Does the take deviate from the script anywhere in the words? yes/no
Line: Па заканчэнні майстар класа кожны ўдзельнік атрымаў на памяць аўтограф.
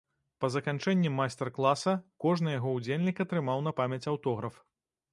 yes